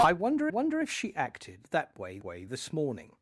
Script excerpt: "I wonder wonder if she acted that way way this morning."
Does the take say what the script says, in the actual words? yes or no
yes